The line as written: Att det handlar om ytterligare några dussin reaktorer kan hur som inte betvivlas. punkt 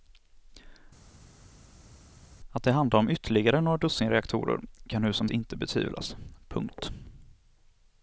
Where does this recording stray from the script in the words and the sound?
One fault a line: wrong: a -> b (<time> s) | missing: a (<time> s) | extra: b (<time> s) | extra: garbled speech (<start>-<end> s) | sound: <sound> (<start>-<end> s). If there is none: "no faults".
no faults